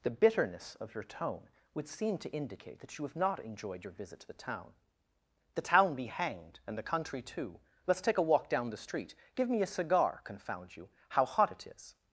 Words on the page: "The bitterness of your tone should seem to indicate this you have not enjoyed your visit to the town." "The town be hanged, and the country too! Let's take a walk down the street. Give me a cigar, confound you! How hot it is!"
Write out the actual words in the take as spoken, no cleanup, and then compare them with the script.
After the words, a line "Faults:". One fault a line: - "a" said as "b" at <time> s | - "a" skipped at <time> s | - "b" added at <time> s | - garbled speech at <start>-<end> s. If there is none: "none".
"The bitterness of your tone would seem to indicate that you have not enjoyed your visit to the town." "The town be hanged, and the country too! Let's take a walk down the street. Give me a cigar, confound you! How hot it is!"
Faults:
- "should" said as "would" at 1.8 s
- "this" said as "that" at 2.8 s